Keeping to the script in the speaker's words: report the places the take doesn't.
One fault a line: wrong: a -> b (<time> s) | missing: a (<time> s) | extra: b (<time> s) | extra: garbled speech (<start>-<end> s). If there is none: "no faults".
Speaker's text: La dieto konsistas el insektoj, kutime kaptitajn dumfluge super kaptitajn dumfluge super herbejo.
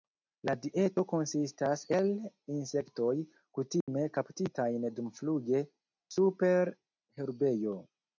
missing: kaptitajn dumfluge super (6.7 s)